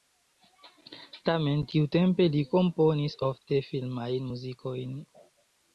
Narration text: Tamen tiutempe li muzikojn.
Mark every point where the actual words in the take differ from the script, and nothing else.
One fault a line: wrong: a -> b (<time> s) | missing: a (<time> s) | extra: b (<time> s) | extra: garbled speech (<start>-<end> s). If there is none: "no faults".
extra: komponis ofte filmajn (2.5 s)